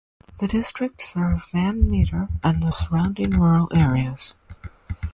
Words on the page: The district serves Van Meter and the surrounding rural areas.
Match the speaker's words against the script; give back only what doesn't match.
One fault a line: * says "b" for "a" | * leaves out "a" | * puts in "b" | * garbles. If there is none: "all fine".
all fine